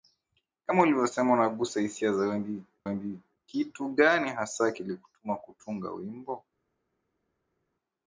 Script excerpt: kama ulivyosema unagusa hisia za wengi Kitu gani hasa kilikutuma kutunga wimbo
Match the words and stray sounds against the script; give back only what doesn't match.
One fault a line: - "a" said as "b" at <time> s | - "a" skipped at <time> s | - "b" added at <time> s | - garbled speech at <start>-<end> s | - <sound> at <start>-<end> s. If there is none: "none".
- "wengi" added at 2.8 s